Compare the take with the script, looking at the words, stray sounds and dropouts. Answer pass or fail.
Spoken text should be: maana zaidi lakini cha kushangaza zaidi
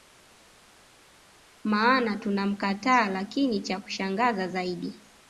fail